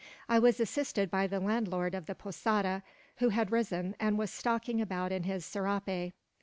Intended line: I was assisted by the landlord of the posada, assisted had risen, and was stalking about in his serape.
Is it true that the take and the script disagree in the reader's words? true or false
true